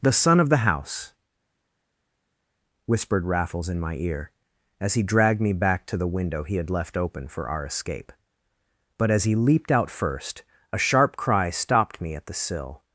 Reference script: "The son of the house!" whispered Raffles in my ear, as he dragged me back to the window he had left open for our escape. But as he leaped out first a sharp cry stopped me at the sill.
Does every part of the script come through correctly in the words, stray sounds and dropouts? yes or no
yes